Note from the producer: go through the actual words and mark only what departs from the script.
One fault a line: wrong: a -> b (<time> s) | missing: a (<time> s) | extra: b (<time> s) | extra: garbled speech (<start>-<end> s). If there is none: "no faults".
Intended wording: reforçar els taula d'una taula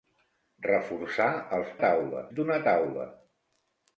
no faults